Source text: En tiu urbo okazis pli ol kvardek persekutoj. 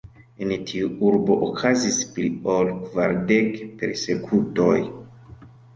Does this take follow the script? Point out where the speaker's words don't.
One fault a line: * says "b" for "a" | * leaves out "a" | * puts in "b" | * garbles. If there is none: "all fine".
all fine